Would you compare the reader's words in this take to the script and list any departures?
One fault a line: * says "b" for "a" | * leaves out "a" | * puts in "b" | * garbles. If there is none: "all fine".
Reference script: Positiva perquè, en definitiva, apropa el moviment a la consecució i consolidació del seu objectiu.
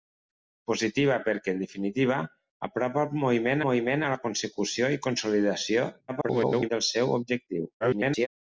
* puts in "moviment"
* garbles
* garbles